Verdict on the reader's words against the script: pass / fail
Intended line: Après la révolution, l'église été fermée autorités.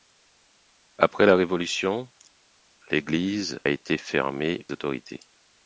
pass